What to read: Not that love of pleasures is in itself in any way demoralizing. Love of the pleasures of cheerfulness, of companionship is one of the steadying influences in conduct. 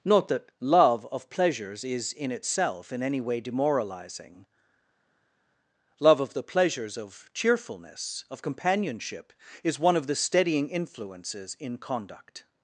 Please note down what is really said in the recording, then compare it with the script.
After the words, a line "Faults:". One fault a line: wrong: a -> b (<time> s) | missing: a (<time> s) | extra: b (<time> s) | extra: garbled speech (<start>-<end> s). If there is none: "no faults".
Not that love of pleasures is in itself in any way demoralizing. Love of the pleasures of cheerfulness, of companionship is one of the steadying influences in conduct.
Faults:
no faults